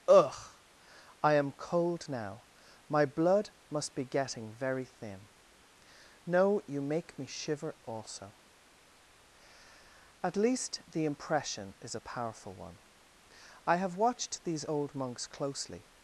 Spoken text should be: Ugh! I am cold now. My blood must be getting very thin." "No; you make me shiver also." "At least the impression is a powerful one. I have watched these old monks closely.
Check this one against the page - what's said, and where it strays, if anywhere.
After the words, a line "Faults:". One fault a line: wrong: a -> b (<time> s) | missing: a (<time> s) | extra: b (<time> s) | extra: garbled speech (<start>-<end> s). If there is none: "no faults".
Ugh! I am cold now. My blood must be getting very thin." "No; you make me shiver also." "At least the impression is a powerful one. I have watched these old monks closely.
Faults:
no faults